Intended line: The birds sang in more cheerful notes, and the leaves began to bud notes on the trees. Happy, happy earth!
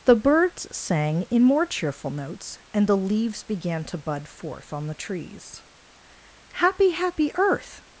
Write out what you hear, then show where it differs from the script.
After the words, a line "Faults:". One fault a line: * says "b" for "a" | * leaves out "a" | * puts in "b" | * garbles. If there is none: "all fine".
The birds sang in more cheerful notes, and the leaves began to bud forth on the trees. Happy, happy earth!
Faults:
* says "forth" for "notes"